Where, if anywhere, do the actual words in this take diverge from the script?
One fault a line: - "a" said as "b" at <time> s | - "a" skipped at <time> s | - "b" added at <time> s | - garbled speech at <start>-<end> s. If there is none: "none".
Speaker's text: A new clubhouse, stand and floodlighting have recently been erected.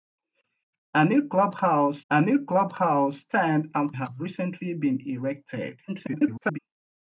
- "a new clubhouse" added at 2.1 s
- "floodlighting" skipped at 3.9 s
- garbled speech at 5.9-6.6 s